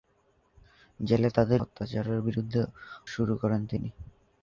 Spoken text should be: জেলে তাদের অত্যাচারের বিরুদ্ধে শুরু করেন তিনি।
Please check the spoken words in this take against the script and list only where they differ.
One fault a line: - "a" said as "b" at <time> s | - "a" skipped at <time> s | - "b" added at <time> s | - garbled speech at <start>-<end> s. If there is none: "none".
none